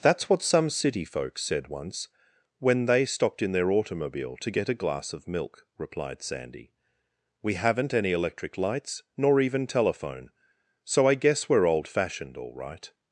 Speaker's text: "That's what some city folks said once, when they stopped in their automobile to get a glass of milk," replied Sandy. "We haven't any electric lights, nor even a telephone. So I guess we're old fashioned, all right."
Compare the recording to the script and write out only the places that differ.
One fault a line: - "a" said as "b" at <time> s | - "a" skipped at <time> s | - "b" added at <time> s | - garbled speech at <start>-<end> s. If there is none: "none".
- "a" skipped at 9.7 s